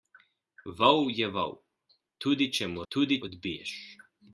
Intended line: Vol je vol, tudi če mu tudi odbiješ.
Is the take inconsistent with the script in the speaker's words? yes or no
no